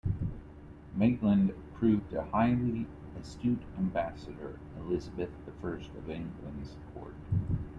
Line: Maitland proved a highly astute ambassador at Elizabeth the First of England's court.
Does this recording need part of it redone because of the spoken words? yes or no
yes